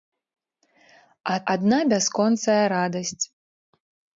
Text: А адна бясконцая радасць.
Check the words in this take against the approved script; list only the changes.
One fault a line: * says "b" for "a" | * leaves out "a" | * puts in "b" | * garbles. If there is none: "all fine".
all fine